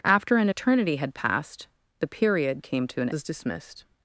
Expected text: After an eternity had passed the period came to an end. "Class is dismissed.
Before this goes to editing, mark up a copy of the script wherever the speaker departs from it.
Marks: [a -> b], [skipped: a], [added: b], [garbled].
After an eternity had passed the period came to an [skipped: end. "Class] is dismissed.